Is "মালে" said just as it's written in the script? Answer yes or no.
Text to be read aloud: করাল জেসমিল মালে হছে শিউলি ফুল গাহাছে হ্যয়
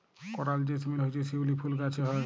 no